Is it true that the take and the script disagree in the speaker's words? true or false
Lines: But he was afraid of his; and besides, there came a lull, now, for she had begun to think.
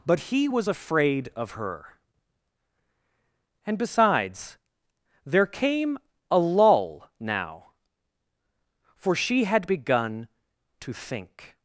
true